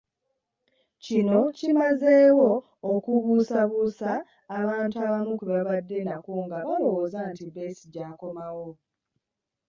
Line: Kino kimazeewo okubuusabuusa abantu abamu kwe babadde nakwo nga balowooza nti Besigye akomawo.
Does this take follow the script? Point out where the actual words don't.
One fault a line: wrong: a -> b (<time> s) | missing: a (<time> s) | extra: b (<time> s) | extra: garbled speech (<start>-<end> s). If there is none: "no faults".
no faults